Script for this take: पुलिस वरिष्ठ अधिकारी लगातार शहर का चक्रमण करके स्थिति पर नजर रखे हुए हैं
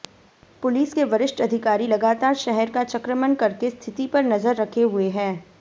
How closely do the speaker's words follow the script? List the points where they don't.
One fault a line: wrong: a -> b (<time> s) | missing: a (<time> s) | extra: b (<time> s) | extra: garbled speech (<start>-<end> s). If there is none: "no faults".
extra: के (0.9 s)